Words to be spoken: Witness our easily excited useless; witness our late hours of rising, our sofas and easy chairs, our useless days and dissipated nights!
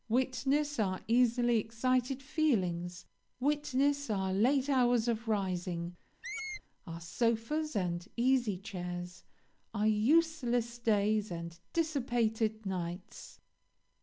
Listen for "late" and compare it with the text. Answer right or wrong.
right